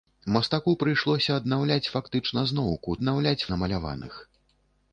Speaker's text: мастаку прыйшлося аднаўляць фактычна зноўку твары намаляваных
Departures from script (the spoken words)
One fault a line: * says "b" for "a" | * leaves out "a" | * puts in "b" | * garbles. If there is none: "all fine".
* says "аднаўляць" for "твары"